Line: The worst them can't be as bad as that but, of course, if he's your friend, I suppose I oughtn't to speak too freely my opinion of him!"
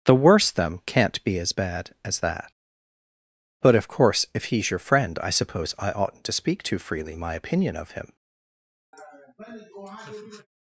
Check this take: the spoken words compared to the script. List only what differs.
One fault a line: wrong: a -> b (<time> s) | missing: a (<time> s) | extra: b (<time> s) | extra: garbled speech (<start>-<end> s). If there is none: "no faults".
no faults